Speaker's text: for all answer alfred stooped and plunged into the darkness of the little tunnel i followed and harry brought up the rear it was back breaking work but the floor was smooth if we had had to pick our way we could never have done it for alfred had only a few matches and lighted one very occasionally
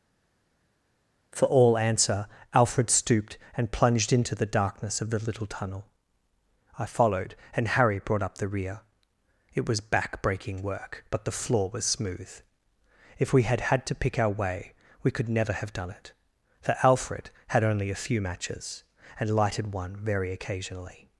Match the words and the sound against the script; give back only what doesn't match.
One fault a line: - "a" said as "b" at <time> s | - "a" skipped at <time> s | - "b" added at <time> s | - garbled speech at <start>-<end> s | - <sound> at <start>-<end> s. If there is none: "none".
none